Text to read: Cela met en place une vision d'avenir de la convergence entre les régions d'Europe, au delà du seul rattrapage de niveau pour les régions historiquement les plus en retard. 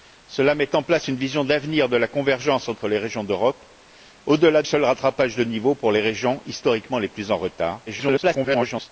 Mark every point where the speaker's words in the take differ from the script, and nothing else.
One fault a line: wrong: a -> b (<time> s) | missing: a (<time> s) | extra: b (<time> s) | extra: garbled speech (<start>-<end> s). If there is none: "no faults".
missing: du (4.6 s)
extra: garbled speech (7.9-8.9 s)